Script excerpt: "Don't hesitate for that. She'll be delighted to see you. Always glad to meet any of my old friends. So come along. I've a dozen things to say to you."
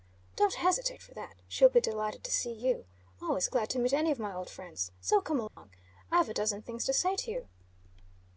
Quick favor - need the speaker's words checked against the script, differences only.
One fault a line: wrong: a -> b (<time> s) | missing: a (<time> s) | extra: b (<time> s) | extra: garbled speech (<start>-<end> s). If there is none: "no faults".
no faults